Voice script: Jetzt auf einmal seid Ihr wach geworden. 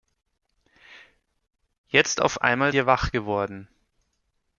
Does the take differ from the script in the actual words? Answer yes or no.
yes